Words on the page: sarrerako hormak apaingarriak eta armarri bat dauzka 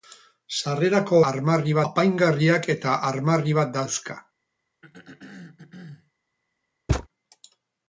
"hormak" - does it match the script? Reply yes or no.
no